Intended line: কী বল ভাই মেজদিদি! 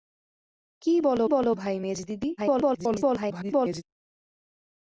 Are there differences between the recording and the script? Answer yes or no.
yes